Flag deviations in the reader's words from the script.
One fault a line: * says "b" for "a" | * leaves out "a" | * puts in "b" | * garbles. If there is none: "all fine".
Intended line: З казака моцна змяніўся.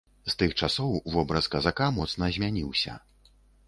* puts in "тых часоў вобраз"